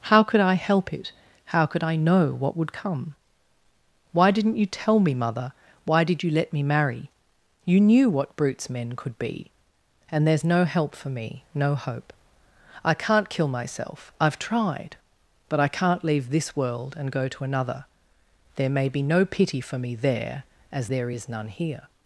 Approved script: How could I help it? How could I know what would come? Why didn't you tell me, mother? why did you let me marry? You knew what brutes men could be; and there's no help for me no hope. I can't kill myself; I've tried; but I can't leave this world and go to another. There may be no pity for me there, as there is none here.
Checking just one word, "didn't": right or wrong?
right